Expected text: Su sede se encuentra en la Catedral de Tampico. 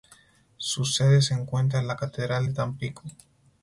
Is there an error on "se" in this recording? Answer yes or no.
no